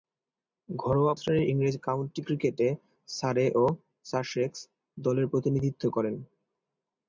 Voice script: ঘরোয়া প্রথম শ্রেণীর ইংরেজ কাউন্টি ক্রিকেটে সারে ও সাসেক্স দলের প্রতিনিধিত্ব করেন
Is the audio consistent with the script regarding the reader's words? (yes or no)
no